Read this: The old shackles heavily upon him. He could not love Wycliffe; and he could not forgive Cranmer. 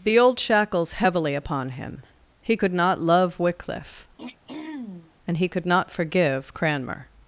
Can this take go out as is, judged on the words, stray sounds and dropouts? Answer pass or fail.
fail